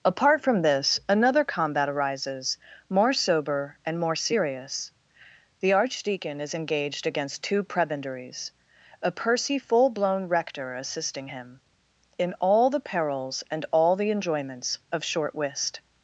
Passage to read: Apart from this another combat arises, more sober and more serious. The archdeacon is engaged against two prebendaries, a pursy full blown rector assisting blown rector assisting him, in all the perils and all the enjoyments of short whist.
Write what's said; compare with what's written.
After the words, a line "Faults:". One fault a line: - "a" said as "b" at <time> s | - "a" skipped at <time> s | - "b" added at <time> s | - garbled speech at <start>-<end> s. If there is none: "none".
Apart from this another combat arises, more sober and more serious. The archdeacon is engaged against two prebendaries, a pursy full blown rector assisting him, in all the perils and all the enjoyments of short whist.
Faults:
- "blown rector assisting" skipped at 11.3 s